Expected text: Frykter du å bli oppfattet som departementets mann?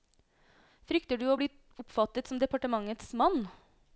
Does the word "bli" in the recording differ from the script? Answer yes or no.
no